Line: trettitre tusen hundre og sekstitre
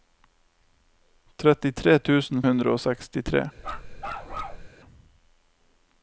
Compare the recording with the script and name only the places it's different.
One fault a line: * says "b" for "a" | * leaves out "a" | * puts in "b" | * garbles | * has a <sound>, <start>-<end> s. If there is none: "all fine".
* has a bark, 3.6-4.7 s